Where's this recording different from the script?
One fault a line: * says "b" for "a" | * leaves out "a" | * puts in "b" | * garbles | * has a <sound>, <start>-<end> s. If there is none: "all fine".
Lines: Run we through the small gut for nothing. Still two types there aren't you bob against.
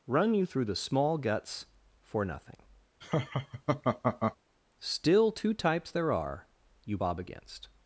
* says "you" for "we"
* says "guts" for "gut"
* has a laugh, 3.0-4.4 s
* says "are" for "aren't"